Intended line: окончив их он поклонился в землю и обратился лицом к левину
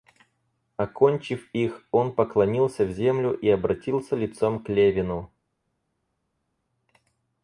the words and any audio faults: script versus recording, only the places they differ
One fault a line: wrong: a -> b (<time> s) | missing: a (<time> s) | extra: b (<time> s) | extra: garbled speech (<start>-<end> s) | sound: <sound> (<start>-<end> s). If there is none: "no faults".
no faults